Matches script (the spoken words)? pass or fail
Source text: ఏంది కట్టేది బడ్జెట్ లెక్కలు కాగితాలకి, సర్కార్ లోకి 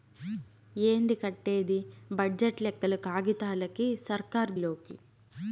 pass